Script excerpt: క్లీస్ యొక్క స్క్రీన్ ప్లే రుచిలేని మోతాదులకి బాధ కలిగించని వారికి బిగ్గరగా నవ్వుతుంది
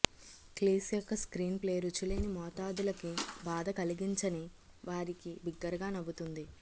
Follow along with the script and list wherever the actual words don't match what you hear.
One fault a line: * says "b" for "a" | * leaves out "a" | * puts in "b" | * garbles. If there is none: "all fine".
all fine